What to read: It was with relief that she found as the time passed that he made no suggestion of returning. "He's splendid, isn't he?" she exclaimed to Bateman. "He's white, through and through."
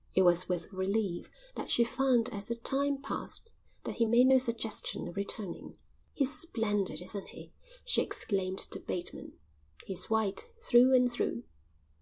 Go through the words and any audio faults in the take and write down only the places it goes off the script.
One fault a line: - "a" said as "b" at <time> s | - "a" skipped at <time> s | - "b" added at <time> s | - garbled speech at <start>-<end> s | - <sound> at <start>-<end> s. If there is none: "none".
none